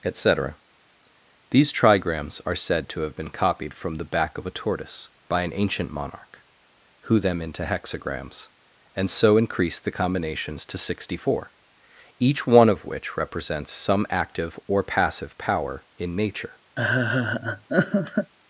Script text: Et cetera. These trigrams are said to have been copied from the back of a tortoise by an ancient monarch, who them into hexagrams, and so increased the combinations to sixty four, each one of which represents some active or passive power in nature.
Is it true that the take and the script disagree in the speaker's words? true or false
false